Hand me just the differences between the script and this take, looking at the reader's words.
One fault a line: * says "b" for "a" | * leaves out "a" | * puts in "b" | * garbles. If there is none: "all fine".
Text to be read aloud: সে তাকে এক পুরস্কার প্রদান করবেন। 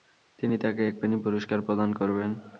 * says "তিনি" for "সে"
* puts in "পেনি"